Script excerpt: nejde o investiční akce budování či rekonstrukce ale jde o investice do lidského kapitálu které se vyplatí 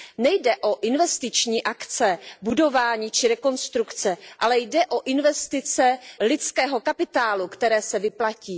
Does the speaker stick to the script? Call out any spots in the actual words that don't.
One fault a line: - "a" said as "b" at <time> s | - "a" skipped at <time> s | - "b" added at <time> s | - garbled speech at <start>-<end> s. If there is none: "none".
- "do" skipped at 6.0 s